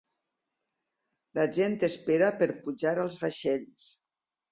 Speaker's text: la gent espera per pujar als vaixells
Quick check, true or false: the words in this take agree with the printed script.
true